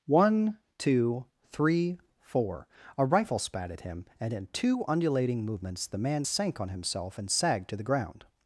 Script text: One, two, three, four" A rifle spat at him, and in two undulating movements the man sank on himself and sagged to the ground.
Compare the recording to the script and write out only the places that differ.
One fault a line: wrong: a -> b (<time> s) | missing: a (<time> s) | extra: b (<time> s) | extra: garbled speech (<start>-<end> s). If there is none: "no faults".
no faults